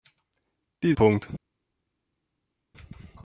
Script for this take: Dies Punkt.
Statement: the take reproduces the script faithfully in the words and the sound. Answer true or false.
true